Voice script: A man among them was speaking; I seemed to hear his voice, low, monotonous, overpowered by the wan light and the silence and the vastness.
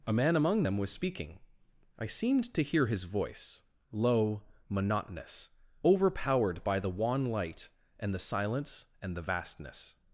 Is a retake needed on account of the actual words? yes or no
no